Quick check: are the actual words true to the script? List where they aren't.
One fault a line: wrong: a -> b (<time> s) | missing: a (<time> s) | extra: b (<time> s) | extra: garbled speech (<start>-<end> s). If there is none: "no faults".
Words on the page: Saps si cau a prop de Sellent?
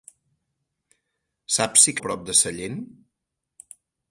missing: cau (1.9 s)